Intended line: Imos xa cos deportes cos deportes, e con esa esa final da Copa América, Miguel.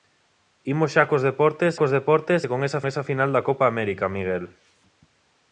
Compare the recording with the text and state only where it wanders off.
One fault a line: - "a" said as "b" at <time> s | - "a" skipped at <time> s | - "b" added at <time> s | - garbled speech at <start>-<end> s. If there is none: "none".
none